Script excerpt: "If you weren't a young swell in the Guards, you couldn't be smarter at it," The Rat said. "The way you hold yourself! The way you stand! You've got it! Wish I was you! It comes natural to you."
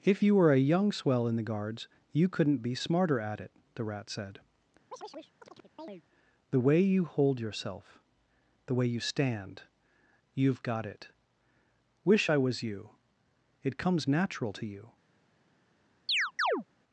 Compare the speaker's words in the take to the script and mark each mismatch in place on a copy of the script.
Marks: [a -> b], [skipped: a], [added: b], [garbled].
"If you [weren't -> were] a young swell in the Guards, you couldn't be smarter at it," The Rat said. "The way you hold yourself! The way you stand! You've got it! Wish I was you! It comes natural to you."